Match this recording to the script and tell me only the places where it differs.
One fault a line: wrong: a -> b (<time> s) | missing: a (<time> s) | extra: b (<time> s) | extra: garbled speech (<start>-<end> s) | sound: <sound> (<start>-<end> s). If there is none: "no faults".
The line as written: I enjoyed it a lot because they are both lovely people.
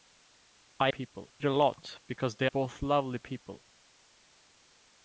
wrong: enjoyed -> people (0.9 s)
missing: are (2.5 s)